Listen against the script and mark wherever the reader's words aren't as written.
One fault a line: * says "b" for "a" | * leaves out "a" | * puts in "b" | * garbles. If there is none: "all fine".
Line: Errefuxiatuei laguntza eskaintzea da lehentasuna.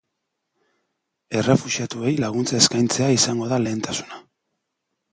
* puts in "izango"